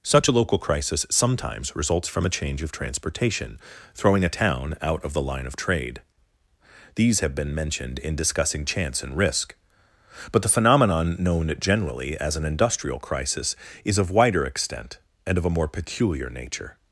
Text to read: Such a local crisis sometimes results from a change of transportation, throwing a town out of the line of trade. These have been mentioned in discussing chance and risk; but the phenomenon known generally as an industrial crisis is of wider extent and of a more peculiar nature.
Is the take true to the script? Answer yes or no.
yes